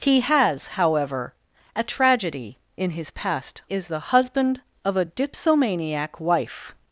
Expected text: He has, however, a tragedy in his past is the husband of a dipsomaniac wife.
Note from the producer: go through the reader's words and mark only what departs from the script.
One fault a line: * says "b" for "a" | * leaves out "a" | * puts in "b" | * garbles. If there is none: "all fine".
all fine